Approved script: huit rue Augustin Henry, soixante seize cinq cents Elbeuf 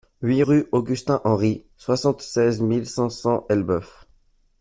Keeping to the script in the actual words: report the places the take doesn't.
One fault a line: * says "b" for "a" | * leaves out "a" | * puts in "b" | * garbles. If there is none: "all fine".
* puts in "mille"